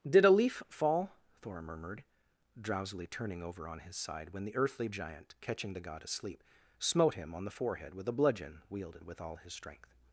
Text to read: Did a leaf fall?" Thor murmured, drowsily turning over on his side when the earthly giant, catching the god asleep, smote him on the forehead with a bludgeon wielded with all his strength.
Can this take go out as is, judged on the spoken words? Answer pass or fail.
pass